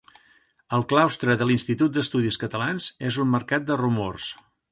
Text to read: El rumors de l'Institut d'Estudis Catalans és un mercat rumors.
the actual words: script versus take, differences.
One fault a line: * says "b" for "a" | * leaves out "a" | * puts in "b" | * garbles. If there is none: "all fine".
* says "claustre" for "rumors"
* puts in "de"